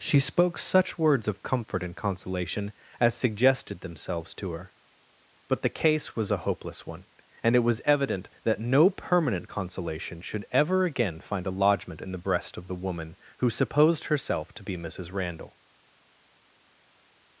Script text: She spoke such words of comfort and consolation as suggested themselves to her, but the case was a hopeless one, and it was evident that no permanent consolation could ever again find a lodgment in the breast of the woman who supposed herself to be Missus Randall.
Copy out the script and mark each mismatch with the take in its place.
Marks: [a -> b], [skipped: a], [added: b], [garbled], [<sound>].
She spoke such words of comfort and consolation as suggested themselves to her, but the case was a hopeless one, and it was evident that no permanent consolation [could -> should] ever again find a lodgment in the breast of the woman who supposed herself to be Missus Randall.